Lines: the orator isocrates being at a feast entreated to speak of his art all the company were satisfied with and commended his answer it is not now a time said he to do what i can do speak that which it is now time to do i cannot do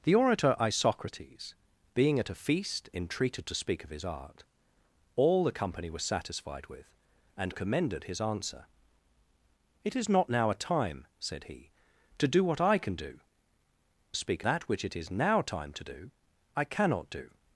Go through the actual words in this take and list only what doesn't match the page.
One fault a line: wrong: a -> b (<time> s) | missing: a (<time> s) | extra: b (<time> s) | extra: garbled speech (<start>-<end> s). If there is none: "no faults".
no faults